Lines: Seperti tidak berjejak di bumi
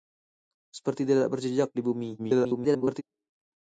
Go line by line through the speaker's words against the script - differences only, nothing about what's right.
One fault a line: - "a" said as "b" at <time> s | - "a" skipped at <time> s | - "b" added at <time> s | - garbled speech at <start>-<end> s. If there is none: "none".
- garbled speech at 2.2-3.0 s